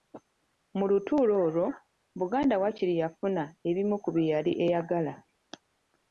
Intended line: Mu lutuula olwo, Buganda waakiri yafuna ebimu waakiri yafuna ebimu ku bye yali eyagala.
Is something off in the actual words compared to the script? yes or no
yes